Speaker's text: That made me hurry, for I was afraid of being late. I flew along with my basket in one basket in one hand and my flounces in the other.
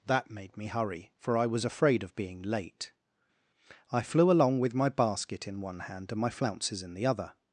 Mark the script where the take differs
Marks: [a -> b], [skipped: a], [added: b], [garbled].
That made me hurry, for I was afraid of being late. I flew along with my basket in one [skipped: basket in one] hand and my flounces in the other.